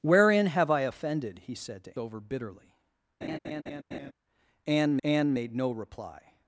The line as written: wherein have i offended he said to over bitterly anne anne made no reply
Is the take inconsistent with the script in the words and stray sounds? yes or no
yes